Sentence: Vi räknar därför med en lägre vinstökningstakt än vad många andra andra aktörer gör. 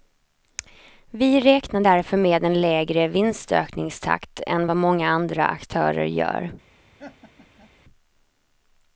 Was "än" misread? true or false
false